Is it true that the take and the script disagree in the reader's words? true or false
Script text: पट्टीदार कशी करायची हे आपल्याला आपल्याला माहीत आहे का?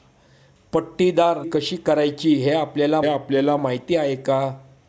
false